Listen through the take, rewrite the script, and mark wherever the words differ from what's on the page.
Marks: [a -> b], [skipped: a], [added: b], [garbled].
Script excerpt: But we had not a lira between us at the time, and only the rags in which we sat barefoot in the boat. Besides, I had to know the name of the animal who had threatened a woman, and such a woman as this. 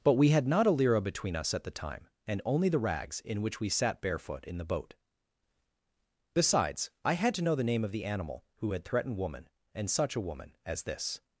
But we had not a lira between us at the time, and only the rags in which we sat barefoot in the boat. Besides, I had to know the name of the animal who had threatened [skipped: a] woman, and such a woman as this.